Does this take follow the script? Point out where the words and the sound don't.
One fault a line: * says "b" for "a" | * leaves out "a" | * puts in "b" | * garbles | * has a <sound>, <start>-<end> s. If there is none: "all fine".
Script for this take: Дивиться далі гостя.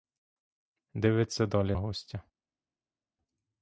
all fine